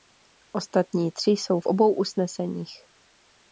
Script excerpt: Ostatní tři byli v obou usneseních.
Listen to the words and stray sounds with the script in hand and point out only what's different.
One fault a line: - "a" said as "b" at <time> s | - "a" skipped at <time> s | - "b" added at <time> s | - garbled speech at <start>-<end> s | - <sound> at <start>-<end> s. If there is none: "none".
- "byli" said as "jsou" at 1.3 s